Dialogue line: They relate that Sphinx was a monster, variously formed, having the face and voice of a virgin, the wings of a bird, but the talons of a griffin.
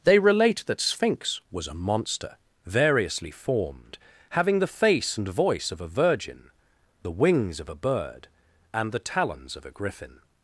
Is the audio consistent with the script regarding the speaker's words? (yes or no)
no